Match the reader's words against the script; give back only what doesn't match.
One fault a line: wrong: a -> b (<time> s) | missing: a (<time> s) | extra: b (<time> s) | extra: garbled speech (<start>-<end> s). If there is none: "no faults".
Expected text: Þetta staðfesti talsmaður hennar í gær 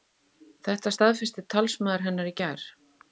no faults